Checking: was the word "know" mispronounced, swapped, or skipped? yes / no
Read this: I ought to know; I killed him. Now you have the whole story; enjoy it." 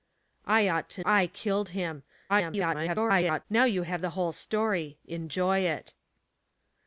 yes